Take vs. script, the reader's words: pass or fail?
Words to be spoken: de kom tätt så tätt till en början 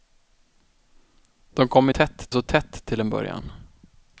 pass